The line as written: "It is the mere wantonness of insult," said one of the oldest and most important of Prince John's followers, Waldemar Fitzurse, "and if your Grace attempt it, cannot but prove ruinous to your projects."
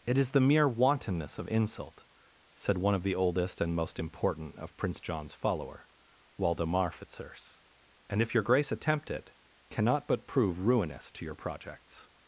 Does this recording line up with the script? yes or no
no